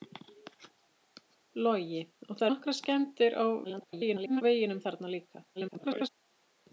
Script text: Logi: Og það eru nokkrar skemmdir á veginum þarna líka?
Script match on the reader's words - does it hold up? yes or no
no